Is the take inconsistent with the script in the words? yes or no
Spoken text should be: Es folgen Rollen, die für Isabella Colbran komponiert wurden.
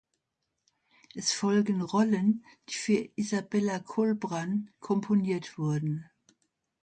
no